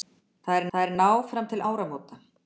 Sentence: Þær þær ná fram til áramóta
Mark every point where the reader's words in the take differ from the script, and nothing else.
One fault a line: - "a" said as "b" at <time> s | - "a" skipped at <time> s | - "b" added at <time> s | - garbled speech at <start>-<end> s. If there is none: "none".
none